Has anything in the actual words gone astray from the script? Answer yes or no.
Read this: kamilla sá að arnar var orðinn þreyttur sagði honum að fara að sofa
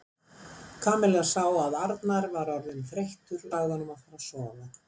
no